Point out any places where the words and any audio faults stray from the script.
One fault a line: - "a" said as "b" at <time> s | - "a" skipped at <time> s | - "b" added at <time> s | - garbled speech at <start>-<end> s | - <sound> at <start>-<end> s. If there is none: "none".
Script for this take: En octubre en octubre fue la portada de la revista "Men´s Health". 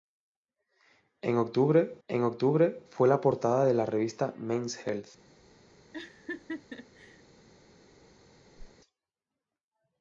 - laugh at 5.9-7.2 s
- whoosh at 8.6-8.7 s